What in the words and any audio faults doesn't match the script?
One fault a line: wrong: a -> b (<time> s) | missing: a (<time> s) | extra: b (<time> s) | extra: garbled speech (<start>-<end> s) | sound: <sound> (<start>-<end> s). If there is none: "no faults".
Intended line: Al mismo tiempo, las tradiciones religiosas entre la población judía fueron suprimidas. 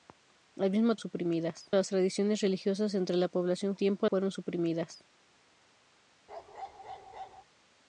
wrong: tiempo -> suprimidas (1.0 s)
wrong: judía -> tiempo (3.7 s)
sound: bark (6.3-7.4 s)